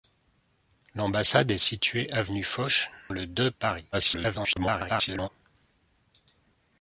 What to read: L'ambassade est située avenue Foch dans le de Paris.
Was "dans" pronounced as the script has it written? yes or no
no